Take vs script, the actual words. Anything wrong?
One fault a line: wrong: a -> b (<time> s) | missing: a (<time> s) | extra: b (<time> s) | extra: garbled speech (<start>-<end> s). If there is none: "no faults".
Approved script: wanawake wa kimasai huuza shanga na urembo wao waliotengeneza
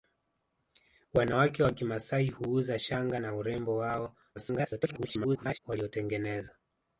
extra: garbled speech (4.3-5.6 s)